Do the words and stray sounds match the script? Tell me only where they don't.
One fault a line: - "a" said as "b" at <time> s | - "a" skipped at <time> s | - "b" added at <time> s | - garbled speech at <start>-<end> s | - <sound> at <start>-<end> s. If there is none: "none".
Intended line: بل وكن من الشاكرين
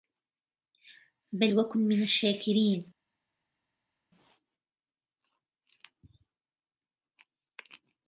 none